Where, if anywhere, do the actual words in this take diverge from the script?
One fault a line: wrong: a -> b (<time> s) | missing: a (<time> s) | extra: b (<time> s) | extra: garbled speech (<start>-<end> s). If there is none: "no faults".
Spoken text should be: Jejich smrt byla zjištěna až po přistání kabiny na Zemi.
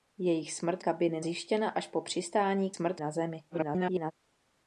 wrong: byla -> kabiny (0.8 s)
wrong: kabiny -> smrt (2.7 s)
extra: garbled speech (3.5-4.1 s)